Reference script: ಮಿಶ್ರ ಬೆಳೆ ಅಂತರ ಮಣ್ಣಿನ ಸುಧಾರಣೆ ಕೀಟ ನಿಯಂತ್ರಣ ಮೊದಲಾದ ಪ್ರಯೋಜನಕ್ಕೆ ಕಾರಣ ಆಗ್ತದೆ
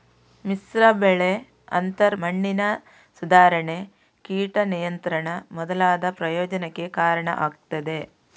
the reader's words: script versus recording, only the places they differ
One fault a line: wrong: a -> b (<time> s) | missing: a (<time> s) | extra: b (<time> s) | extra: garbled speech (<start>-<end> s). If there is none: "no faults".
no faults